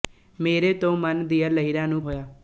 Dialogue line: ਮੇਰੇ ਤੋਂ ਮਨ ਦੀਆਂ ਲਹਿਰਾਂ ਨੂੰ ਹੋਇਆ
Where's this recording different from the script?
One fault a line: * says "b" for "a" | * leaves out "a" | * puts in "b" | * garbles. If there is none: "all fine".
all fine